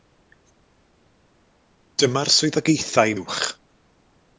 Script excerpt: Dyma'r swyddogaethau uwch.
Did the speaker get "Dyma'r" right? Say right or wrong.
right